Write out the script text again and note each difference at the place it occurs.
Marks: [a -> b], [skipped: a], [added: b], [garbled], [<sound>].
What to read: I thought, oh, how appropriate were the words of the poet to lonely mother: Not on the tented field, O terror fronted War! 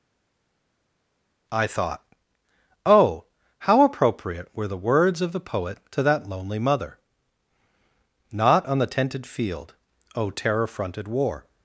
I thought, oh, how appropriate were the words of the poet to [added: that] lonely mother: Not on the tented field, O terror fronted War!